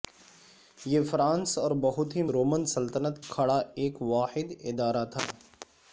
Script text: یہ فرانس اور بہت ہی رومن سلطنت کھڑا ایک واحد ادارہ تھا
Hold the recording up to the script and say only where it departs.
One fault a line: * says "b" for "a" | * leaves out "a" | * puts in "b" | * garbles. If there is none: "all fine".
all fine